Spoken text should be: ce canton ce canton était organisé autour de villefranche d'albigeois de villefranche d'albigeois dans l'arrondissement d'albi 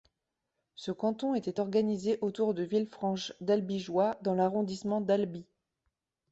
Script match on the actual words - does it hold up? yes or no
no